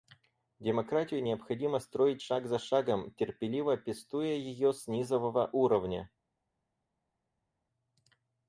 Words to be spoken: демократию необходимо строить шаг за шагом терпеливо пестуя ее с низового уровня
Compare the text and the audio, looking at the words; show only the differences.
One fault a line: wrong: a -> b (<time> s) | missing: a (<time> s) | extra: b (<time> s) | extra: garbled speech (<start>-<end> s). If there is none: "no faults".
no faults